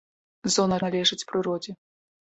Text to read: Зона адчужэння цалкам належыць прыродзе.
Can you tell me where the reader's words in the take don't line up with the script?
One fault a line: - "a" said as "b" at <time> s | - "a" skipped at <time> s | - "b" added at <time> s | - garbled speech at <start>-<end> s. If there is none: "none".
- "адчужэння цалкам" skipped at 0.8 s